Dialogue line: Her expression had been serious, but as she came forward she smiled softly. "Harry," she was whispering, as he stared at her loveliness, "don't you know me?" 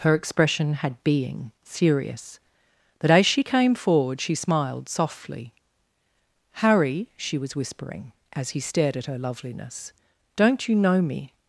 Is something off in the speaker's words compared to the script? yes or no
yes